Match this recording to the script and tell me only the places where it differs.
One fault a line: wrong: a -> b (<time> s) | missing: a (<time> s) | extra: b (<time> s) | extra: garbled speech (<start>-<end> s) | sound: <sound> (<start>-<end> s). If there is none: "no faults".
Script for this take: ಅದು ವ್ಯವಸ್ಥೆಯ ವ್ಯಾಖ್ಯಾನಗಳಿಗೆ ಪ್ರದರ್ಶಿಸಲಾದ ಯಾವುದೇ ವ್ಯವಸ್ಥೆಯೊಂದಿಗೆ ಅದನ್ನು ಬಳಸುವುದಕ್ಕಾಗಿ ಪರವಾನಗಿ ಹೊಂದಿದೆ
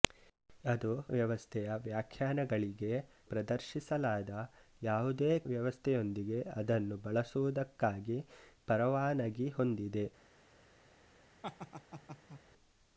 sound: laugh (11.4-12.4 s)